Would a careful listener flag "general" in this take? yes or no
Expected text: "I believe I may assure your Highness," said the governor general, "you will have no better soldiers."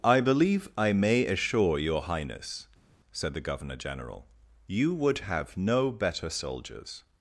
no